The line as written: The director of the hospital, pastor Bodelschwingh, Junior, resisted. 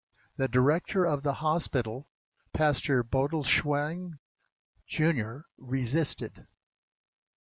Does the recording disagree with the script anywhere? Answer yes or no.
no